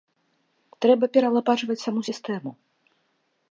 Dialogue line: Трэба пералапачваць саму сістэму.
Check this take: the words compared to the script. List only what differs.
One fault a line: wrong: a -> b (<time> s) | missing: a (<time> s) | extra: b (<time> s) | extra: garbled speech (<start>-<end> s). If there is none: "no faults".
no faults